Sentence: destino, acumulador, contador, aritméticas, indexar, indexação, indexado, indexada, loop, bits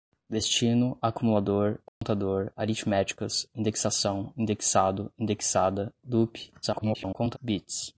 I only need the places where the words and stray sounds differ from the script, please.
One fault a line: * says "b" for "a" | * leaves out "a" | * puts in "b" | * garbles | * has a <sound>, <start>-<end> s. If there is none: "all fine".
* has a dropout, 1.9-2.0 s
* leaves out "indexar"
* garbles